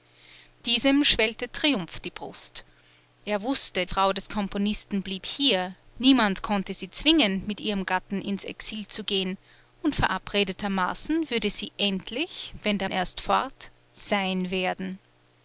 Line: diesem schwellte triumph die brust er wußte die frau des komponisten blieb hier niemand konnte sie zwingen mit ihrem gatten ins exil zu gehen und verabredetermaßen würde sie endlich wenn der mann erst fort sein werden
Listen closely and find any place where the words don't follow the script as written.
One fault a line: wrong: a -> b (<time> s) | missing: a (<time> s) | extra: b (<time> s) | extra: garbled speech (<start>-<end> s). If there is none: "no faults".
missing: die (3.9 s)
missing: mann (12.9 s)